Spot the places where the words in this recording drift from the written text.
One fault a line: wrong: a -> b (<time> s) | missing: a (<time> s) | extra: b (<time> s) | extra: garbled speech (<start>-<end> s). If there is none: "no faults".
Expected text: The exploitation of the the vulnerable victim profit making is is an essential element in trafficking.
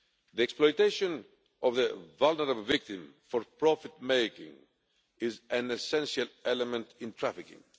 missing: the (1.9 s)
extra: for (3.3 s)
missing: is (5.4 s)